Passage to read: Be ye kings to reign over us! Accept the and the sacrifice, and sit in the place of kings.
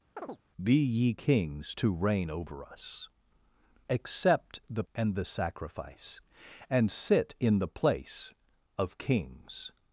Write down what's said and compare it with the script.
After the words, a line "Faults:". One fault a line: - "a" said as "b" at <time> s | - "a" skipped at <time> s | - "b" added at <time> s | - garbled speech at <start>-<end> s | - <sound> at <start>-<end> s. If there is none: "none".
Be ye kings to reign over us! Accept the and the sacrifice, and sit in the place of kings.
Faults:
- chirp at 0.2-0.4 s